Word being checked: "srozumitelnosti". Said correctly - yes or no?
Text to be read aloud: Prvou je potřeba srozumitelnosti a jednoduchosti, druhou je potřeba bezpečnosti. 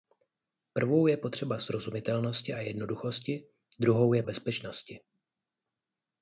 yes